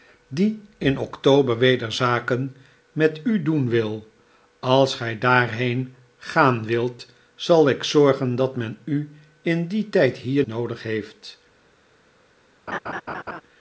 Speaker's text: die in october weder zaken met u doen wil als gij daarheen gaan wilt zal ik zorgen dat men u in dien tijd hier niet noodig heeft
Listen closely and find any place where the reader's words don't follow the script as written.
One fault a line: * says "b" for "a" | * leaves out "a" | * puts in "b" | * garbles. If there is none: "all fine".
* leaves out "niet"